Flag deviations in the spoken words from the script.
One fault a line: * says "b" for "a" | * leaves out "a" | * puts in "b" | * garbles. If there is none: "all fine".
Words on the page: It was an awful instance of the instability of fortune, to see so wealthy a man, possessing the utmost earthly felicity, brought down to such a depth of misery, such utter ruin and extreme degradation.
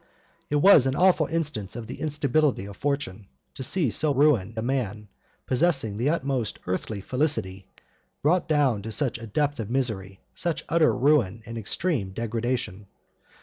* says "ruin" for "wealthy"